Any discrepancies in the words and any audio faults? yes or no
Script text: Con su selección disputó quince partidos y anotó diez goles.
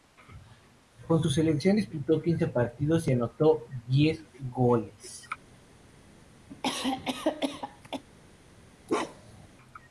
yes